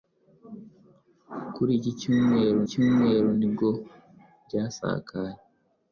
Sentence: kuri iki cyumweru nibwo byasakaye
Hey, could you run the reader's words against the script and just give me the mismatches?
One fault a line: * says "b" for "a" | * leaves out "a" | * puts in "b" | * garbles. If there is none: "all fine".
* puts in "cyumweru"